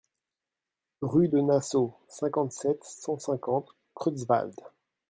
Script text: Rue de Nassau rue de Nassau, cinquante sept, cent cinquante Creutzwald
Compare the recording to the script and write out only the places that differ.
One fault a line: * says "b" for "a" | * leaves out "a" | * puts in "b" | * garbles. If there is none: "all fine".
* leaves out "rue de Nassau"